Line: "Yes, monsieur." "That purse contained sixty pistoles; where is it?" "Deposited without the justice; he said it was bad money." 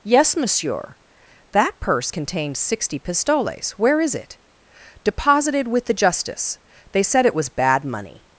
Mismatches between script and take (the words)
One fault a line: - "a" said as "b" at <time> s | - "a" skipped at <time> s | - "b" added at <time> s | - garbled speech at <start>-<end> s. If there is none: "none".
- "without" said as "with" at 5.7 s
- "he" said as "they" at 6.9 s